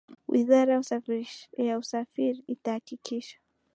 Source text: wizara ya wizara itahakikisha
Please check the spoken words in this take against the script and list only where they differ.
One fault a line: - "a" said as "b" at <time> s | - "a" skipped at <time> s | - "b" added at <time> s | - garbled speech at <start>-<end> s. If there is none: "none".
- "wizara" said as "usafiri" at 1.8 s